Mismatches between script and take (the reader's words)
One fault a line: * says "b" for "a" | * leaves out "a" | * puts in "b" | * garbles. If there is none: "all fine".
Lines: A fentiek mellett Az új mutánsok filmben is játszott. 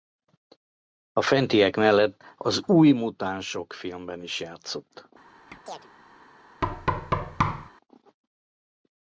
all fine